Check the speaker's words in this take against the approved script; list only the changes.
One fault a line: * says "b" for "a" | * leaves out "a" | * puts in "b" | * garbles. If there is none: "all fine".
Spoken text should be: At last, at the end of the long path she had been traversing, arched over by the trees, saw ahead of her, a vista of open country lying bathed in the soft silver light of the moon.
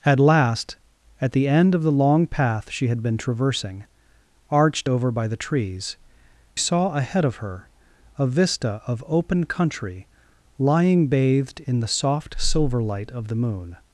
all fine